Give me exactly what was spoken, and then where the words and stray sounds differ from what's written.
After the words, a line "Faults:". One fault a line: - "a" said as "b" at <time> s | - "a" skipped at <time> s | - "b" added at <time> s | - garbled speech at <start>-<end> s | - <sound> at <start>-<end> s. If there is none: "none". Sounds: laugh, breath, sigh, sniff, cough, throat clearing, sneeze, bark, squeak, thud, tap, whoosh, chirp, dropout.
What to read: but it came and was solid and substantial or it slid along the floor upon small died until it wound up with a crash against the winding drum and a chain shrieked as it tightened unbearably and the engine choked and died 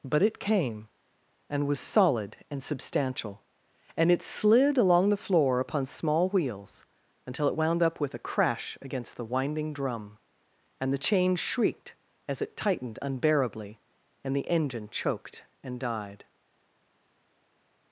but it came and was solid and substantial and it slid along the floor upon small wheels until it wound up with a crash against the winding drum and the chain shrieked as it tightened unbearably and the engine choked and died
Faults:
- "or" said as "and" at 4.0 s
- "died" said as "wheels" at 6.3 s
- "a" said as "the" at 10.9 s